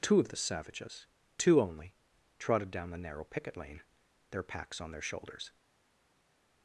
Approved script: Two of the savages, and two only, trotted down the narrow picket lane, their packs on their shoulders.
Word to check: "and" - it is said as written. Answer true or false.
false